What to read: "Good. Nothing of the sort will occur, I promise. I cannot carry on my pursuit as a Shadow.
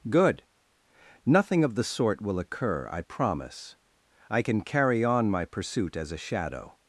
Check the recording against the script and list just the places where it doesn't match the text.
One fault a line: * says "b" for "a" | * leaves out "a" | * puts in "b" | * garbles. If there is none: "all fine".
* says "can" for "cannot"